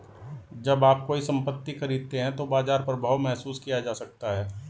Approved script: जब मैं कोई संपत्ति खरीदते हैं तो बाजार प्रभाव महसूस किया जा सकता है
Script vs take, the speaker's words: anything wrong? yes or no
yes